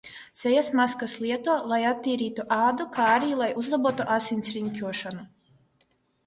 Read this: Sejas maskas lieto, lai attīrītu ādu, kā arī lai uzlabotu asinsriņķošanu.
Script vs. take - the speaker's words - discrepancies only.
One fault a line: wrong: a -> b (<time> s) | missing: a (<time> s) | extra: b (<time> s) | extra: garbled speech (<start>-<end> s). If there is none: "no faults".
no faults